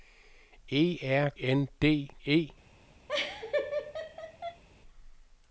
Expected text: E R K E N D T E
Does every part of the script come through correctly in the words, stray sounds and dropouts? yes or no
no